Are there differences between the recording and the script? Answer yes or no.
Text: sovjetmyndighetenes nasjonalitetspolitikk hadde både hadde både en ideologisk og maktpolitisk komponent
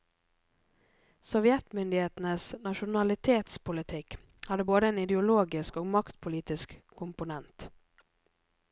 yes